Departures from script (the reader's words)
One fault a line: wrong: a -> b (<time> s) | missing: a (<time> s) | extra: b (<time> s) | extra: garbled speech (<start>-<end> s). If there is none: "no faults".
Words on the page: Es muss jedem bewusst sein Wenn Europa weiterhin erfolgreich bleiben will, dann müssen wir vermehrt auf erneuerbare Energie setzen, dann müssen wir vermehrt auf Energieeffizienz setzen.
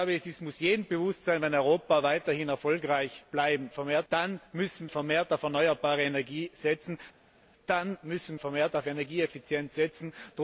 wrong: will -> vermehrt (3.7 s)
missing: wir (4.9 s)
missing: wir (8.4 s)